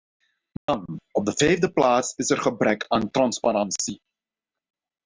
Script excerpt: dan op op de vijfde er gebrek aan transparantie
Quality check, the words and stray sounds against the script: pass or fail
fail